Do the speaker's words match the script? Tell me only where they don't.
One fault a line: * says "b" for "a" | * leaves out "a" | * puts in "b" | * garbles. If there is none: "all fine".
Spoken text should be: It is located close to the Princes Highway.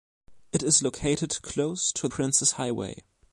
* leaves out "the"